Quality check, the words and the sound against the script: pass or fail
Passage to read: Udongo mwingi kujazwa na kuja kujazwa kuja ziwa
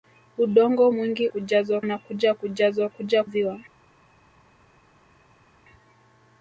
pass